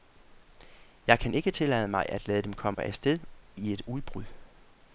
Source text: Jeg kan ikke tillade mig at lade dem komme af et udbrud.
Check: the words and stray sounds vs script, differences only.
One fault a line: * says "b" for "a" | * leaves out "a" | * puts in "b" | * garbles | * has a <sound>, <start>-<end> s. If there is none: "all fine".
* has a dropout, 2.7-2.8 s
* puts in "sted i"